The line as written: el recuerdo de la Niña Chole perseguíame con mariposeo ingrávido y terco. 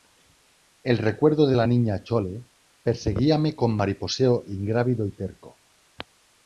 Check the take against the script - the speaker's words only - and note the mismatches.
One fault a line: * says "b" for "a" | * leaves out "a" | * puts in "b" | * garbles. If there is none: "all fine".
all fine